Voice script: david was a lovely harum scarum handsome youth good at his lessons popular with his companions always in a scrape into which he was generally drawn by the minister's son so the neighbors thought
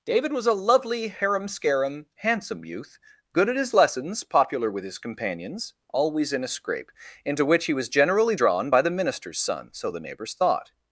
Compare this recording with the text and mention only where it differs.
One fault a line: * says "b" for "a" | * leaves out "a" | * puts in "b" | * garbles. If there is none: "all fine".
all fine